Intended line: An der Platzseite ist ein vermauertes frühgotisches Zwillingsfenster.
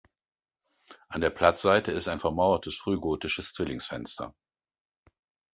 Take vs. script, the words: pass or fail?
pass